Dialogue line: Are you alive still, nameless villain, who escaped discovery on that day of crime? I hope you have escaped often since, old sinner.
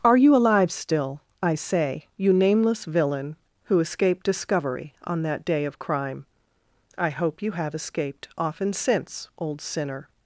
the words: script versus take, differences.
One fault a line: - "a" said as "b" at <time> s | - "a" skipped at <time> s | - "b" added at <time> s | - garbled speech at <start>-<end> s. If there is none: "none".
- "I say you" added at 1.4 s